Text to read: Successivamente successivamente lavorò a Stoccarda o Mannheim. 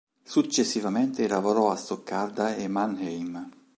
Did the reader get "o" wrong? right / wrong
wrong